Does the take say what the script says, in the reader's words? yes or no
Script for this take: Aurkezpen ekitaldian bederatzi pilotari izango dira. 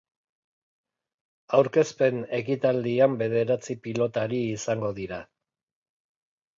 yes